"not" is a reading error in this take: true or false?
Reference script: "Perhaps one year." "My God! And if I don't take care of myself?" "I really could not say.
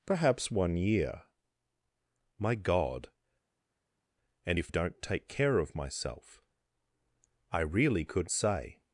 true